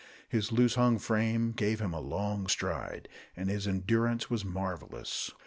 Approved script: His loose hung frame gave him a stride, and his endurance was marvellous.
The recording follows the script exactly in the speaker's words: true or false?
false